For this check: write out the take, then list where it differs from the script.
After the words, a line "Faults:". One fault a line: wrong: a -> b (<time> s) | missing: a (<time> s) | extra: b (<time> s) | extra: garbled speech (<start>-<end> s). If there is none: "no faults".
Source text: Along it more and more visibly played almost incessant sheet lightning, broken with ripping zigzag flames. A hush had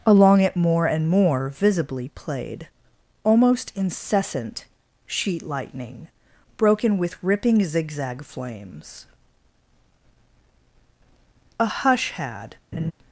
Along it more and more visibly played almost incessant sheet lightning, broken with ripping zigzag flames. A hush had
Faults:
no faults